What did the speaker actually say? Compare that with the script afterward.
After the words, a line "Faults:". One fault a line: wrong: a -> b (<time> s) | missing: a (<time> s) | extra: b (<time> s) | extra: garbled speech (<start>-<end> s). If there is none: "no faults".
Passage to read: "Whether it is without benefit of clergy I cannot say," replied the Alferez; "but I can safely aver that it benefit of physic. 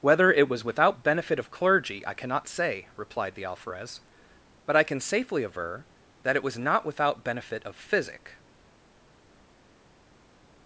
"Whether it was without benefit of clergy I cannot say," replied the Alferez; "but I can safely aver that it was not without benefit of physic.
Faults:
wrong: is -> was (0.5 s)
extra: was not without (6.4 s)